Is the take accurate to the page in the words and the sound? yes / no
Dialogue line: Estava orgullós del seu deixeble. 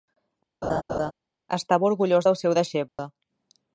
no